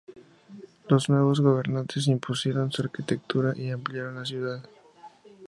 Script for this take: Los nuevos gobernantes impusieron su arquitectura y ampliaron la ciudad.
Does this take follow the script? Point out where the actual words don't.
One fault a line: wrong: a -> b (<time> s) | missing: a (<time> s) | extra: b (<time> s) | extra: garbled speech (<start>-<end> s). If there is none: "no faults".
no faults